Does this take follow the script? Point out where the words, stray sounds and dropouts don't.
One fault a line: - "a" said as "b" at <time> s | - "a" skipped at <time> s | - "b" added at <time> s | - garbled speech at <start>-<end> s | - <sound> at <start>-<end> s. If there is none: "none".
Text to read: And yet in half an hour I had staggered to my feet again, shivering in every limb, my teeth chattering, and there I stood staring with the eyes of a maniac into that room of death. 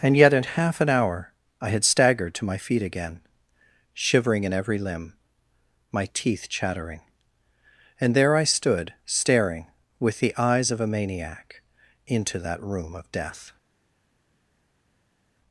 none